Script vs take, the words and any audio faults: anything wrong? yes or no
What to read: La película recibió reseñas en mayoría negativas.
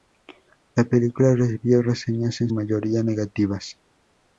no